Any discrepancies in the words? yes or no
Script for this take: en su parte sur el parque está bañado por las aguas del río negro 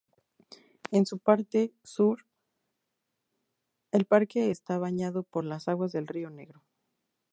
no